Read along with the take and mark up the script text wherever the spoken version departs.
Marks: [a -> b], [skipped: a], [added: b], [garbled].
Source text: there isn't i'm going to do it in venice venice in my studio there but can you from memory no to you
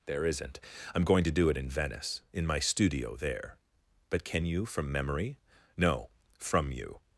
there isn't i'm going to do it in venice [skipped: venice] in my studio there but can you from memory no [to -> from] you